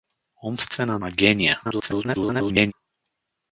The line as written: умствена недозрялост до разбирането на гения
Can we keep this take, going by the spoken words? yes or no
no